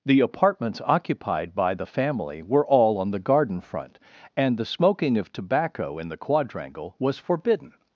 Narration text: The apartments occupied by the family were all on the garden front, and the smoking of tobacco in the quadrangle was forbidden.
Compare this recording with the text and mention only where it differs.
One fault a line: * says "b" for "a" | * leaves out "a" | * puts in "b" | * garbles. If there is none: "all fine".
all fine